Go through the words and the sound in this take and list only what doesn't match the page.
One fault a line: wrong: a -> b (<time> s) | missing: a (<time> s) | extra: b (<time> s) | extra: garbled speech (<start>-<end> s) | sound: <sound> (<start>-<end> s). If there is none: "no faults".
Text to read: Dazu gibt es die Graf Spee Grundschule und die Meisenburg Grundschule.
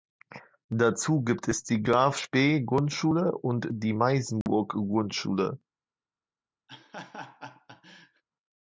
sound: dropout (4.4-4.5 s)
sound: laugh (6.7-8.2 s)